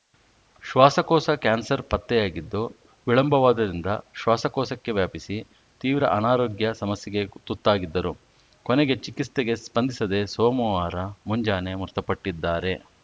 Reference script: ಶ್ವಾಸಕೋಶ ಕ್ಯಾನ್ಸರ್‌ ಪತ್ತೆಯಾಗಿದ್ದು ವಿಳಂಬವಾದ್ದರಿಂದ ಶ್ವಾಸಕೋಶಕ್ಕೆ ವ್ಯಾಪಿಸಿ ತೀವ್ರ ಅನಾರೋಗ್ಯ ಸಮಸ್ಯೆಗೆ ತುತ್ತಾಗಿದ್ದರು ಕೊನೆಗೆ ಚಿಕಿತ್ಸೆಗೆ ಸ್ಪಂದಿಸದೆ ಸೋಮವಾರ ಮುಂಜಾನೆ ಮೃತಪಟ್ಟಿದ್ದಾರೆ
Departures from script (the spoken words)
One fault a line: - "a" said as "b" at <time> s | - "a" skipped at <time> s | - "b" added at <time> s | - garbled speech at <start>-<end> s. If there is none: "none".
none